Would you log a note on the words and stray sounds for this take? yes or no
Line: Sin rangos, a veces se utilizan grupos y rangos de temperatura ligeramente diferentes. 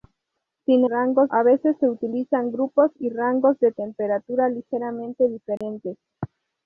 yes